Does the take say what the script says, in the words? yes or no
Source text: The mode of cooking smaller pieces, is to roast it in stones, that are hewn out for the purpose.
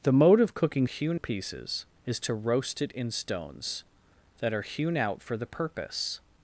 no